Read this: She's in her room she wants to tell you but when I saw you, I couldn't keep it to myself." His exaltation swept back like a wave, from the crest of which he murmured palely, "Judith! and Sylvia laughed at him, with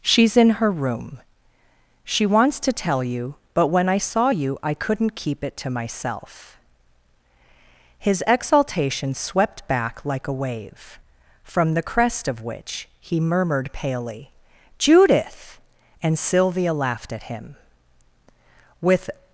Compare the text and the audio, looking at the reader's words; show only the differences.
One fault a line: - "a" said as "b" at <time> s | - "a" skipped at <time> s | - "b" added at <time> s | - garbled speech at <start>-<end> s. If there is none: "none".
none